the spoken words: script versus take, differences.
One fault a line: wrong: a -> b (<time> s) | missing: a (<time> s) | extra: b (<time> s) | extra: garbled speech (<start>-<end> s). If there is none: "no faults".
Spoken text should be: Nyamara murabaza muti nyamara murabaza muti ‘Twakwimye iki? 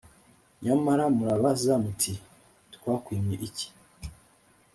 missing: nyamara murabaza muti (2.1 s)